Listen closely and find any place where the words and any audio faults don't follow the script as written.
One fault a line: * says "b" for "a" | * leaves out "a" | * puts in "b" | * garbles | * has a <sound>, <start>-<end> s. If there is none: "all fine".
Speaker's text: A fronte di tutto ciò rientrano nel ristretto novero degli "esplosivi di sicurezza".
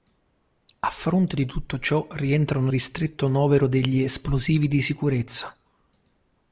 * leaves out "nel"